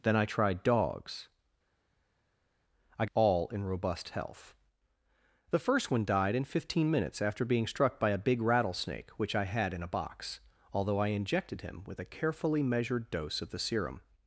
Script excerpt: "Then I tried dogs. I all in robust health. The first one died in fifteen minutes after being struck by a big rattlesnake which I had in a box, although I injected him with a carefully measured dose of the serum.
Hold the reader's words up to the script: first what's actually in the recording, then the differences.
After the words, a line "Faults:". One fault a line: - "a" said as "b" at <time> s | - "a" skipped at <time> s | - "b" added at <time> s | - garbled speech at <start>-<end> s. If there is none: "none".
"Then I tried dogs. I all in robust health. The first one died in fifteen minutes after being struck by a big rattlesnake which I had in a box, although I injected him with a carefully measured dose of the serum.
Faults:
none